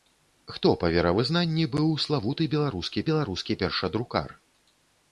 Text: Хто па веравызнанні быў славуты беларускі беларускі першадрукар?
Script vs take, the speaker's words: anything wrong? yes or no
no